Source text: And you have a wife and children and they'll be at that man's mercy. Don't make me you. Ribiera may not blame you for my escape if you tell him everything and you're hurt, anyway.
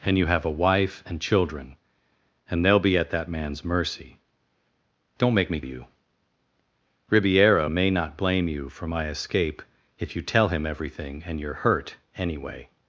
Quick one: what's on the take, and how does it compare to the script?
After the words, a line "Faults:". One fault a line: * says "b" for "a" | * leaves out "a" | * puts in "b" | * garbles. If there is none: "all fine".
And you have a wife and children and they'll be at that man's mercy. Don't make me you. Ribiera may not blame you for my escape if you tell him everything and you're hurt, anyway.
Faults:
all fine